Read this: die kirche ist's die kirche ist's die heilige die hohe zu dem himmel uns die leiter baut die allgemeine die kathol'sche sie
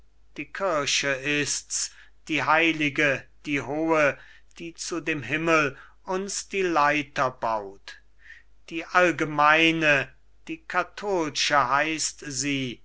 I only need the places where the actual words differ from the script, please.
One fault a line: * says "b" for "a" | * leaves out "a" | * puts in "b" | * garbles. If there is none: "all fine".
* says "heilige" for "kirche ist's"
* says "hohe" for "heilige"
* leaves out "hohe"
* puts in "heißt"